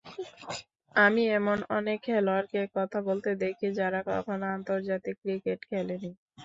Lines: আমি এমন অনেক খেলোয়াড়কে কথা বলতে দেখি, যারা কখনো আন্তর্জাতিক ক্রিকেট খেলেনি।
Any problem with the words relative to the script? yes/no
no